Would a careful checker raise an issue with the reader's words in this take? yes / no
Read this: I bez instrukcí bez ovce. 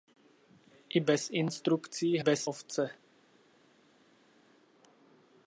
no